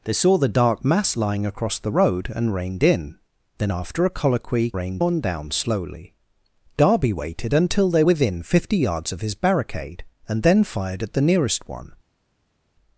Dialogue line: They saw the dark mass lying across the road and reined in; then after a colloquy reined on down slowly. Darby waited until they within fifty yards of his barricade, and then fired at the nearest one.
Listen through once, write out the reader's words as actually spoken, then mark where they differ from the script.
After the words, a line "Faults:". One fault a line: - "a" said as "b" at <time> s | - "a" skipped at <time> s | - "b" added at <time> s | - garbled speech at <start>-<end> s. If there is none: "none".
They saw the dark mass lying across the road and reined in; then after a colloquy reined on down slowly. Darby waited until they within fifty yards of his barricade, and then fired at the nearest one.
Faults:
none